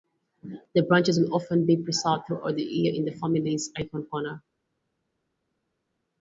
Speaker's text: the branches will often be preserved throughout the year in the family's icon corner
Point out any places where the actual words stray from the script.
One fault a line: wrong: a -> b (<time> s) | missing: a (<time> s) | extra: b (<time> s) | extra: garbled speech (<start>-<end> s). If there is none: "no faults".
no faults